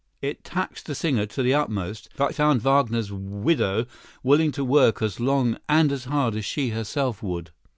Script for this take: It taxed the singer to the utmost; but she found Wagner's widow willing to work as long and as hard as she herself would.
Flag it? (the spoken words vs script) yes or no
yes